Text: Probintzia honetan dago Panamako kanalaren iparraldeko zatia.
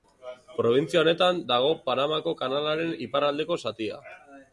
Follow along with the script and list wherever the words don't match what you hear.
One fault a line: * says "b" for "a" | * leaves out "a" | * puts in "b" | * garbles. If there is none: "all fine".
all fine